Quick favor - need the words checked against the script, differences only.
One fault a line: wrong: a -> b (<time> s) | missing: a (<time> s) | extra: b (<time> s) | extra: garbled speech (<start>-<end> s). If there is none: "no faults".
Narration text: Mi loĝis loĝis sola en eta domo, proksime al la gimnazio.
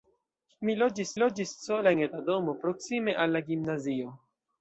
no faults